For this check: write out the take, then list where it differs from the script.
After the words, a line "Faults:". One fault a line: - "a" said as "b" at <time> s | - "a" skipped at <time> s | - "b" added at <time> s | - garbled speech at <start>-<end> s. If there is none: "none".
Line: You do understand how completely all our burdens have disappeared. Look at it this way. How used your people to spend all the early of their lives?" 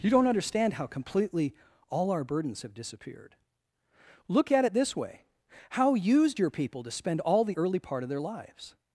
You don't understand how completely all our burdens have disappeared. Look at it this way. How used your people to spend all the early part of their lives?"
Faults:
- "do" said as "don't" at 0.1 s
- "part" added at 7.8 s